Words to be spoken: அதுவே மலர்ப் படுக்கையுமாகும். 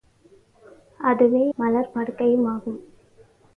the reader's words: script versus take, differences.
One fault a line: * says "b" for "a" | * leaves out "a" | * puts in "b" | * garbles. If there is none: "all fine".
all fine